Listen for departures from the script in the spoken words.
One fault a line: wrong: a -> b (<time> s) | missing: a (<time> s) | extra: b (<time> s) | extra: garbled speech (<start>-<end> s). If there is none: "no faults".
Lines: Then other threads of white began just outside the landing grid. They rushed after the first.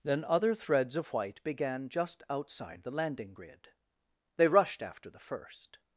no faults